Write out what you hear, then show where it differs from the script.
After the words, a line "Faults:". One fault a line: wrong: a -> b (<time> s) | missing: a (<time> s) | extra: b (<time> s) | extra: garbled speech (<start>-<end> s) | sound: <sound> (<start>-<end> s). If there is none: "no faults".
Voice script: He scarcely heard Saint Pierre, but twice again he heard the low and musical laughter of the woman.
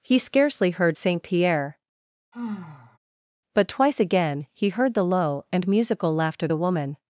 He scarcely heard Saint Pierre, but twice again he heard the low and musical laughter the woman.
Faults:
sound: sigh (2.3-3.0 s)
missing: of (6.5 s)